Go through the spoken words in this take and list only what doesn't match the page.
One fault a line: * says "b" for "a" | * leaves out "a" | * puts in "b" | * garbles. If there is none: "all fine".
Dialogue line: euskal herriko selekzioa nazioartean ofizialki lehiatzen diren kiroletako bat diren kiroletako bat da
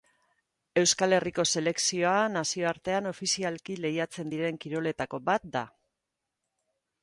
* leaves out "diren kiroletako bat"